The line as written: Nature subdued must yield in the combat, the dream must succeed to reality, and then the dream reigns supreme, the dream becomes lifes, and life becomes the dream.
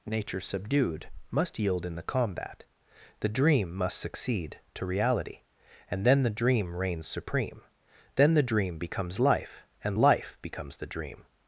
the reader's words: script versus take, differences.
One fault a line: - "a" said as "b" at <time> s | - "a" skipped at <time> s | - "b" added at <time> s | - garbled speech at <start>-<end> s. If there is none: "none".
- "then" added at 8.2 s
- "lifes" said as "life" at 9.2 s